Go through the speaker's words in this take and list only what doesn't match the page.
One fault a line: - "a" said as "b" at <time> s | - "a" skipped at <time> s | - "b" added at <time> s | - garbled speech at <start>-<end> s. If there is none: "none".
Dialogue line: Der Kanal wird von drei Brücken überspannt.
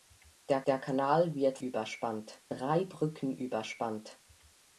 - "der" added at 0.7 s
- "von" said as "überspannt" at 1.6 s